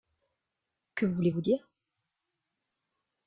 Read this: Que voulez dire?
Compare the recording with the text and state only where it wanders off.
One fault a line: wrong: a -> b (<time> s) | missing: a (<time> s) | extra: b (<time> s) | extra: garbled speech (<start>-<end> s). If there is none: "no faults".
extra: vous (1.3 s)